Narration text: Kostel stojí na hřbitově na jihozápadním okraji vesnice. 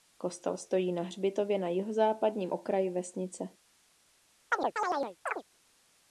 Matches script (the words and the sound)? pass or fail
fail